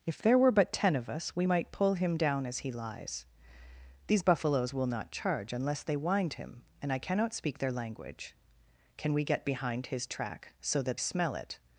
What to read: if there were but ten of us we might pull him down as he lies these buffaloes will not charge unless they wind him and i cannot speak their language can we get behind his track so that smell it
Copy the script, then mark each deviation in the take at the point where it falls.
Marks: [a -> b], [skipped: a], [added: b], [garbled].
if there were but ten of us we might pull him down as he lies these buffaloes will not charge unless they wind him and i cannot speak their language can we get behind his track so that smell it